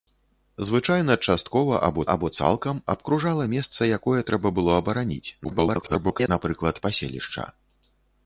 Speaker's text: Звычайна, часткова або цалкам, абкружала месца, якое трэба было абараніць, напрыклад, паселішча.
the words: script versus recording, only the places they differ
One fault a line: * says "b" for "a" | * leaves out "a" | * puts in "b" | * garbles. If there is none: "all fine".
* puts in "або"
* garbles